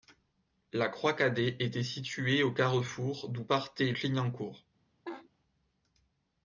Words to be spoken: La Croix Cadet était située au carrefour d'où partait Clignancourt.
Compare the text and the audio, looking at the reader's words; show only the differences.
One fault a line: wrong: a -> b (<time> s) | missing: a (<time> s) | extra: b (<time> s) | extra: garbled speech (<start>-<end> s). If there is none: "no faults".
no faults